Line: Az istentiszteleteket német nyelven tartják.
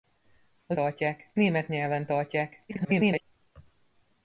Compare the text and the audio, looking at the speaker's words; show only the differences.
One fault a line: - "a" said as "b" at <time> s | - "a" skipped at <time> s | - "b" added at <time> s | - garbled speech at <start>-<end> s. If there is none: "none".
- "istentiszteleteket" said as "tartják" at 0.7 s
- garbled speech at 2.7-3.2 s